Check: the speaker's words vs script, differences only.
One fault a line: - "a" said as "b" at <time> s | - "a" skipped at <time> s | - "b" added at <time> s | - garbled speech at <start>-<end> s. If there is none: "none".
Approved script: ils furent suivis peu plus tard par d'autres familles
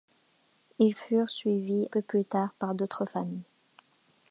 none